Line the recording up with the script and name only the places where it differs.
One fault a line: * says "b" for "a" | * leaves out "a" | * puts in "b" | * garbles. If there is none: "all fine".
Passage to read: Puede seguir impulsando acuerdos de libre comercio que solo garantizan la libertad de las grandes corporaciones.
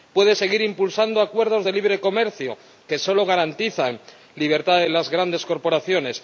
all fine